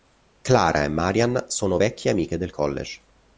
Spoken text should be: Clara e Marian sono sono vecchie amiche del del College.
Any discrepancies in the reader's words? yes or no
yes